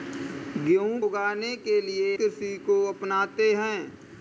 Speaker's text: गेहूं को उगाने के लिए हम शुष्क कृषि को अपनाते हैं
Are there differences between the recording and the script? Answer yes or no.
yes